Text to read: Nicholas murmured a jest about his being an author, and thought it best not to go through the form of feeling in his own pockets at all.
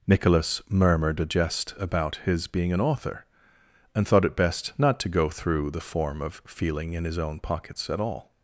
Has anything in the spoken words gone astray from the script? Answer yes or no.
no